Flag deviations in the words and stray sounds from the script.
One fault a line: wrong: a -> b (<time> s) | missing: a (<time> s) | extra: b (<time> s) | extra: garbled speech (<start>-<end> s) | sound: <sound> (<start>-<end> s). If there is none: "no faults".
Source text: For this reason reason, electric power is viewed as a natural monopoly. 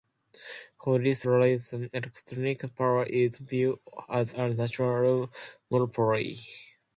missing: reason (1.9 s)